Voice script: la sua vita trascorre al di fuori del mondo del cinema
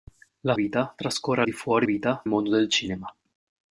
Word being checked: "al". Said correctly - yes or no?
no